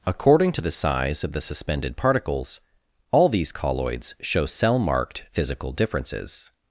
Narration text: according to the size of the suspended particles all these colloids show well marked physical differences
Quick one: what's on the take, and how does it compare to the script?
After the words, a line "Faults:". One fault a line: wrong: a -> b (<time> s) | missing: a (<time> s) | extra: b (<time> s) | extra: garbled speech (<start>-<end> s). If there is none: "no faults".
according to the size of the suspended particles all these colloids show cell marked physical differences
Faults:
wrong: well -> cell (4.5 s)